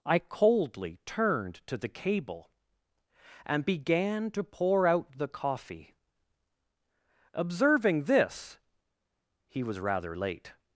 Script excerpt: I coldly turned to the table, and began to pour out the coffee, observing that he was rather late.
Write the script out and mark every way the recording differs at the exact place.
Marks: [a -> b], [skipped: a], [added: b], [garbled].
I coldly turned to the [table, -> cable] and began to pour out the coffee, observing [that -> this] he was rather late.